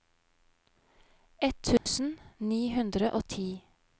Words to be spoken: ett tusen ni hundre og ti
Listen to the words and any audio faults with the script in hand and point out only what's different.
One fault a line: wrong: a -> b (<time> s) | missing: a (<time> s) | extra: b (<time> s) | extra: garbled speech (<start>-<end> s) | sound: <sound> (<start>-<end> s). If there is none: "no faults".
sound: dropout (1.8-1.9 s)